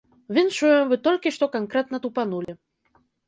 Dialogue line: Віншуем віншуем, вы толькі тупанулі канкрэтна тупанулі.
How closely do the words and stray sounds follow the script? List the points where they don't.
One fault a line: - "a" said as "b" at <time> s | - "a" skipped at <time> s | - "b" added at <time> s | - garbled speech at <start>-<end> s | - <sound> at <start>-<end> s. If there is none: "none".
- "віншуем" skipped at 0.9 s
- "тупанулі" said as "што" at 1.3 s
- dropout at 2.4-2.5 s